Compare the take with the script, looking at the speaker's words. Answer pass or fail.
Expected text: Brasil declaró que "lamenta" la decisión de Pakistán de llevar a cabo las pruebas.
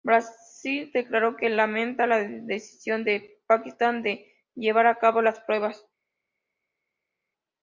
pass